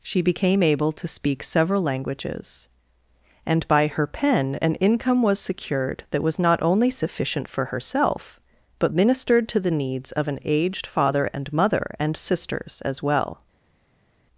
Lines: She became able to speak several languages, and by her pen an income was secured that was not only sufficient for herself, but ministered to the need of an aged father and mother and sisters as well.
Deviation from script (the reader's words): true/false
true